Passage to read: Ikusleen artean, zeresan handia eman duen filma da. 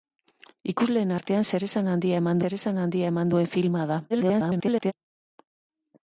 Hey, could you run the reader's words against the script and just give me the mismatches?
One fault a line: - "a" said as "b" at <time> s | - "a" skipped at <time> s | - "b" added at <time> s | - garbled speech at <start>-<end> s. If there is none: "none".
- "zeresan handia eman" added at 2.4 s
- garbled speech at 4.1-4.9 s